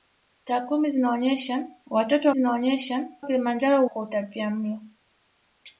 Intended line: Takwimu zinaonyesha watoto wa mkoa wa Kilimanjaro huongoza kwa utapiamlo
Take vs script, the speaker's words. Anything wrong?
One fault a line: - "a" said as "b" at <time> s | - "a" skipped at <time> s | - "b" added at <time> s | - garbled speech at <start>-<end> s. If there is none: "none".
- "mkoa" said as "zinaonyesha" at 2.3 s
- "huongoza" skipped at 3.9 s